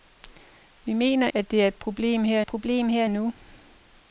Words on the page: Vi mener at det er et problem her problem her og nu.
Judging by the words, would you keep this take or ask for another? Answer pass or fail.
pass